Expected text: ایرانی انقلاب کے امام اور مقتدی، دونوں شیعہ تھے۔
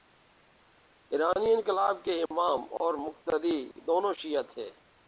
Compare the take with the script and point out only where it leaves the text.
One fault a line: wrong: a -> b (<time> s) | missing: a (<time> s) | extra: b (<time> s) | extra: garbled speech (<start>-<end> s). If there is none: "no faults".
no faults